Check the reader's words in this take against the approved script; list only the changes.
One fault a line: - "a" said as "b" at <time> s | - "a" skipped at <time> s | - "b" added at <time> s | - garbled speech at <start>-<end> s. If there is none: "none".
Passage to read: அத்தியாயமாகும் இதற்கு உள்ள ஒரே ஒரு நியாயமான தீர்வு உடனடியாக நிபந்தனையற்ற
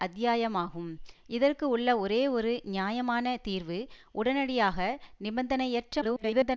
- garbled speech at 6.0-6.6 s